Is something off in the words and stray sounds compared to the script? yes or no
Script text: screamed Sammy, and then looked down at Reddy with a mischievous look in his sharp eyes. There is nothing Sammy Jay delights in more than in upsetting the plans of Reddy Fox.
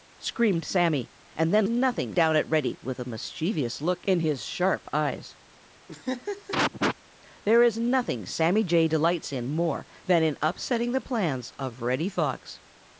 yes